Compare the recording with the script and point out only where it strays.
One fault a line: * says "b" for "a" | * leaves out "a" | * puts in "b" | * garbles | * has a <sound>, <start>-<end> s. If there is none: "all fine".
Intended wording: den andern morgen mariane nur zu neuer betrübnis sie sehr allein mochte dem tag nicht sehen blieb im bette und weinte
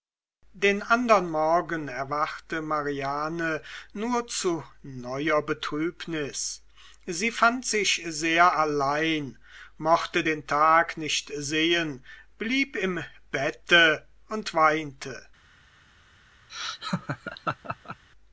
* puts in "erwachte"
* puts in "fand sich"
* says "den" for "dem"
* has a laugh, 16.5-18.0 s